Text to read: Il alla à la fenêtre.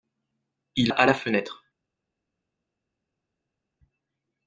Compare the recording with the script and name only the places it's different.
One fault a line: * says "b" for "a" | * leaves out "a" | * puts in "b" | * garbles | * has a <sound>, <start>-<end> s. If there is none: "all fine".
* leaves out "alla"